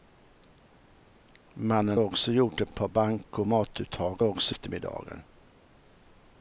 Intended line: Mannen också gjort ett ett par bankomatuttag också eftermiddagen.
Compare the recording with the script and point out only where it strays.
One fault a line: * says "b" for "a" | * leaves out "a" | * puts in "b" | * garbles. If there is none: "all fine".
all fine